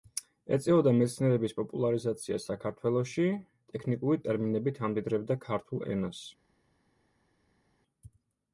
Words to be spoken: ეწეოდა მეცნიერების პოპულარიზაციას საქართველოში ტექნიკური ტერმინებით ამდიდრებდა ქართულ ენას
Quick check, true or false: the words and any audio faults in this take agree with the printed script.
true